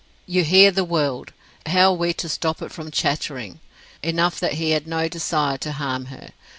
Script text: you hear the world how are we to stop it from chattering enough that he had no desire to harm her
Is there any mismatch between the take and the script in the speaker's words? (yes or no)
no